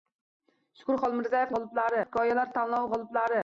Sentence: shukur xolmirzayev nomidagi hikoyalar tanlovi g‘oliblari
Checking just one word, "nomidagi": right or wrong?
wrong